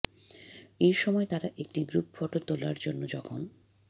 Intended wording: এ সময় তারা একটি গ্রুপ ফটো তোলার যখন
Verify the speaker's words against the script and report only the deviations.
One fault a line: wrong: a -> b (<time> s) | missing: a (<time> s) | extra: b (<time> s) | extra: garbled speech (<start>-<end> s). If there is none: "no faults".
extra: জন্য (2.8 s)